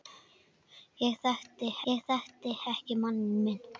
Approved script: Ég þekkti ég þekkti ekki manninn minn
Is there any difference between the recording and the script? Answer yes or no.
no